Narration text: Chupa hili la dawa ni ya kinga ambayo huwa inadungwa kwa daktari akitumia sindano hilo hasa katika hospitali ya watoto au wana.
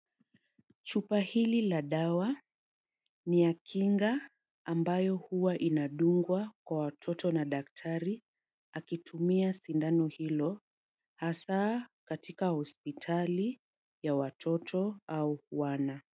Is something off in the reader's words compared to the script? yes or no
yes